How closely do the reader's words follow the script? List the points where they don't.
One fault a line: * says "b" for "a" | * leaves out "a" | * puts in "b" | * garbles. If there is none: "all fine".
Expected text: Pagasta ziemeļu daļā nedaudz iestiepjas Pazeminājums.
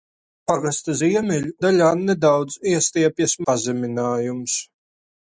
all fine